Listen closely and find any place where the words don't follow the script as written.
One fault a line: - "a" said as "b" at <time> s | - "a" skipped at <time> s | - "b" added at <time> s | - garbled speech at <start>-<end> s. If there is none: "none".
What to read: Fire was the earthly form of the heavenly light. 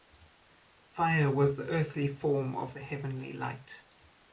none